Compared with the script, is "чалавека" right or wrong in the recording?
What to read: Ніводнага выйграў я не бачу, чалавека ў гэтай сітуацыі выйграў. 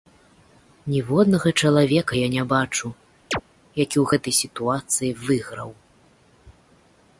wrong